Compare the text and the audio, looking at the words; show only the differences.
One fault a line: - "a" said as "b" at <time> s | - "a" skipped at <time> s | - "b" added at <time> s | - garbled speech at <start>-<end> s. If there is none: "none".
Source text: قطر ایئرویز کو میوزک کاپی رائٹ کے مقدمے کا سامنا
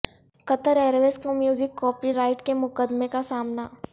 none